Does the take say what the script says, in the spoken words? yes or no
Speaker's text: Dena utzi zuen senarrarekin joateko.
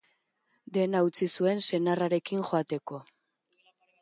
yes